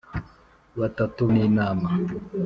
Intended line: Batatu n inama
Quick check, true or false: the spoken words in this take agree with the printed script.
true